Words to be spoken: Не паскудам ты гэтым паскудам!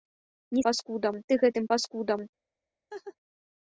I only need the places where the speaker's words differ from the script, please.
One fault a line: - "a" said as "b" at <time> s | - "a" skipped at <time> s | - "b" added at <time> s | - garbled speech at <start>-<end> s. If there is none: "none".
none